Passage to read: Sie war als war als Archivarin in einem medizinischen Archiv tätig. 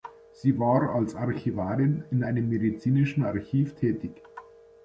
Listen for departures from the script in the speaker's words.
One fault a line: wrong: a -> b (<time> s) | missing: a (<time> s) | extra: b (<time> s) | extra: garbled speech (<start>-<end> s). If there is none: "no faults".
missing: war als (1.1 s)